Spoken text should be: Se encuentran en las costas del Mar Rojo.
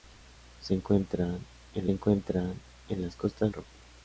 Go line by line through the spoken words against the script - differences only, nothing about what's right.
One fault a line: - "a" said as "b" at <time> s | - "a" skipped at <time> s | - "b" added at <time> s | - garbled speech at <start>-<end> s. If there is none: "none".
- "encuentran en" added at 1.9 s
- "del Mar" skipped at 3.5 s